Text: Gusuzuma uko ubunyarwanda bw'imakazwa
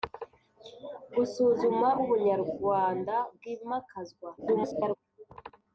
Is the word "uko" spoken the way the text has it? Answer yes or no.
no